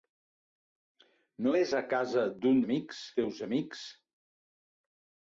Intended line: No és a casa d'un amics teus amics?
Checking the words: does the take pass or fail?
pass